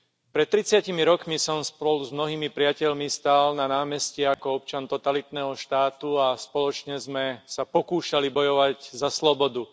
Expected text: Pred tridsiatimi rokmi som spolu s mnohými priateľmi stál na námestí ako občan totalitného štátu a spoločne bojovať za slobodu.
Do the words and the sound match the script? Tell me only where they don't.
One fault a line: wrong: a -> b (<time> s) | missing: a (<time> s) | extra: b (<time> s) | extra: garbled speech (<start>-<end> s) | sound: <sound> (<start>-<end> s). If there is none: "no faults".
sound: dropout (4.3-4.4 s)
extra: sme sa pokúšali (7.0 s)